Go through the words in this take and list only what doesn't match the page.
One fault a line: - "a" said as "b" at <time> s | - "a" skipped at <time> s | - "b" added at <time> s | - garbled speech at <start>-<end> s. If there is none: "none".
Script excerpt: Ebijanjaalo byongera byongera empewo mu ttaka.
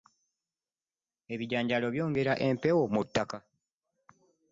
- "byongera" skipped at 2.3 s